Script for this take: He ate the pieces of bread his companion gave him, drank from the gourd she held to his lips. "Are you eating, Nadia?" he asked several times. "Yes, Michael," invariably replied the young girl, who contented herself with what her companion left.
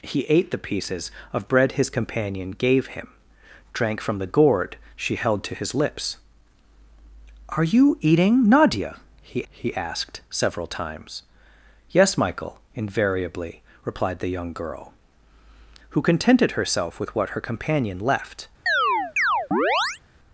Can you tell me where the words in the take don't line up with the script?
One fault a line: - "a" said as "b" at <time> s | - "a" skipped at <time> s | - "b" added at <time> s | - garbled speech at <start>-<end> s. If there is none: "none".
- "he" added at 9.5 s